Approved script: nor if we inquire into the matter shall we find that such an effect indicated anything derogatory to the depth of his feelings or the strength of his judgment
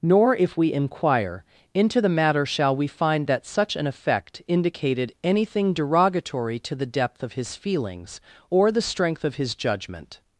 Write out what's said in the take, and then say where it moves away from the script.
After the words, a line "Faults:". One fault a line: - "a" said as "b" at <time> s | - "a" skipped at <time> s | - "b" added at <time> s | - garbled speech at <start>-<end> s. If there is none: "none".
nor if we inquire into the matter shall we find that such an effect indicated anything derogatory to the depth of his feelings or the strength of his judgment
Faults:
none